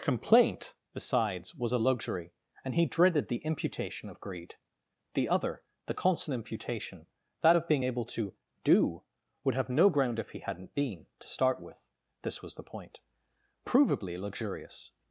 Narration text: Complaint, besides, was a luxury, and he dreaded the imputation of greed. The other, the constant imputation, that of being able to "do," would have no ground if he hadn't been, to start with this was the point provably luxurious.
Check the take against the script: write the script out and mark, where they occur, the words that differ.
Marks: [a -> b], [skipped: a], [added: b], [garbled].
Complaint, besides, was a luxury, and he dreaded the imputation of greed. The other, the constant imputation, that of being able to "do," would have no ground if he hadn't been, to start with this was the point provably luxurious.